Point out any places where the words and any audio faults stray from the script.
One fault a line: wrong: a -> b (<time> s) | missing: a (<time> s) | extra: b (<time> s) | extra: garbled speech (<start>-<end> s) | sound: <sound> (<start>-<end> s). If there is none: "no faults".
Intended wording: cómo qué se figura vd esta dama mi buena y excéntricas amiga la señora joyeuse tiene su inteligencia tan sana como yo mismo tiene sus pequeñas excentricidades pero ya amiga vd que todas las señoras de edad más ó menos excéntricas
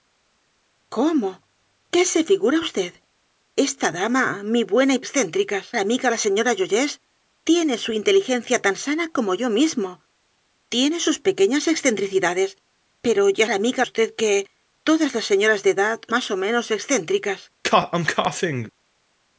sound: cough (17.6-18.7 s)